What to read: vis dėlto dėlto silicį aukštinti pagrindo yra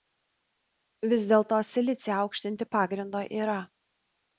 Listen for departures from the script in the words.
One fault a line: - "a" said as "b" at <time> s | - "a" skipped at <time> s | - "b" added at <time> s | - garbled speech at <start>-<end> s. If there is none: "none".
- "dėlto" skipped at 1.6 s